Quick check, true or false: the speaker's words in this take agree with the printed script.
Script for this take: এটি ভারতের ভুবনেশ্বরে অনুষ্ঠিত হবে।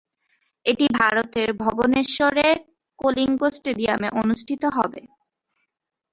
false